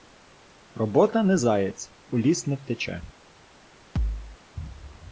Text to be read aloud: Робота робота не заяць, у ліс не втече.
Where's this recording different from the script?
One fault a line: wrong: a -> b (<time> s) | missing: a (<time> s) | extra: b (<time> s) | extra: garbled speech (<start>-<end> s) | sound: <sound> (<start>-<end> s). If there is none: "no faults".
missing: робота (1.2 s)
sound: thud (4.0-4.4 s)